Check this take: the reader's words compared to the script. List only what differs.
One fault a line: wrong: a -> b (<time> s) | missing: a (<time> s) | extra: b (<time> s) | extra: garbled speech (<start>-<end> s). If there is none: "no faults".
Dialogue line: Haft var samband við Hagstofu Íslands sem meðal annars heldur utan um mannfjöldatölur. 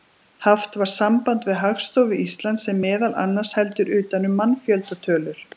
no faults